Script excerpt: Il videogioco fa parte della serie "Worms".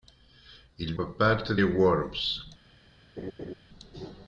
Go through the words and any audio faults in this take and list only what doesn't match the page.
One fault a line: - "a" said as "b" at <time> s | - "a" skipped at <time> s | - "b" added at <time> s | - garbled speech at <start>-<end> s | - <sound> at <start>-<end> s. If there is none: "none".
- "videogioco" skipped at 0.9 s
- "della serie" skipped at 1.5 s
- laugh at 3.2-3.5 s